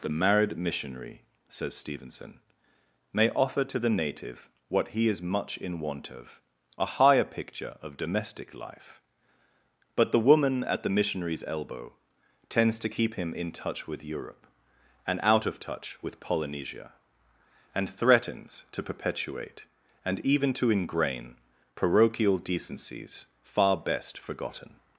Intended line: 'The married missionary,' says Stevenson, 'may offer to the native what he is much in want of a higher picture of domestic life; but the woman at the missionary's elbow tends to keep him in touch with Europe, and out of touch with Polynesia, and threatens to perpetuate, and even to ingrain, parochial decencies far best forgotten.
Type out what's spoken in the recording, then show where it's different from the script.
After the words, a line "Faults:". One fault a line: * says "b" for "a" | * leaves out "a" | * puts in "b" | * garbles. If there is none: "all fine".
'The married missionary,' says Stevenson, 'may offer to the native what he is much in want of a higher picture of domestic life; but the woman at the missionary's elbow tends to keep him in touch with Europe, and out of touch with Polynesia, and threatens to perpetuate, and even to ingrain, parochial decencies far best forgotten.
Faults:
all fine